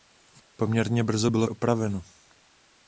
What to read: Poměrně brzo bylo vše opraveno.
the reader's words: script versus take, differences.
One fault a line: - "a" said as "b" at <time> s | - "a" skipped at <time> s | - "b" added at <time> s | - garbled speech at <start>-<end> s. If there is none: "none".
- "vše" skipped at 1.5 s